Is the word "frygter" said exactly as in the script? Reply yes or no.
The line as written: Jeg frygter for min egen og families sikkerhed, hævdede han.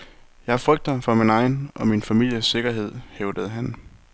yes